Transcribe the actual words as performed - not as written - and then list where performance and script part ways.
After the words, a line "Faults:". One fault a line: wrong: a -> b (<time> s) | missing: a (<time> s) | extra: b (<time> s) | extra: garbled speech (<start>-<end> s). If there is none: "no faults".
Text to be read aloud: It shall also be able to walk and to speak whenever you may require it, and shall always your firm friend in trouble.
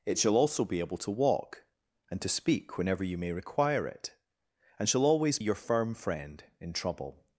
It shall also be able to walk and to speak whenever you may require it, and shall always your firm friend in trouble.
Faults:
no faults